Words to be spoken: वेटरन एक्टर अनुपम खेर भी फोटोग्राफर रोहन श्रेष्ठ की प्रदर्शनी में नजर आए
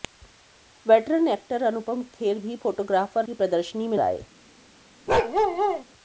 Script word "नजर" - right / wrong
wrong